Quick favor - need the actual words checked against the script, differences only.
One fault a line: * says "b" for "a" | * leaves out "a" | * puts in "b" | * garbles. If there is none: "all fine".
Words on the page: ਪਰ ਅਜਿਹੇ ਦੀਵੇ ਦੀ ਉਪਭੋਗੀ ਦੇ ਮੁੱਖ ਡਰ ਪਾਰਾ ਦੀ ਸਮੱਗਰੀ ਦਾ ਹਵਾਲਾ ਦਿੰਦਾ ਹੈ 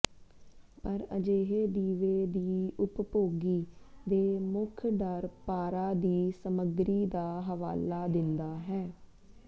all fine